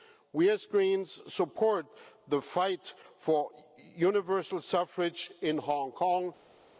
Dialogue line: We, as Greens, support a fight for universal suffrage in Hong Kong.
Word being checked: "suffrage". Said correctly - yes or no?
yes